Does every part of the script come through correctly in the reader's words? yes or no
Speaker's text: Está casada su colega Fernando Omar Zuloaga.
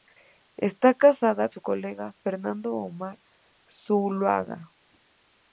yes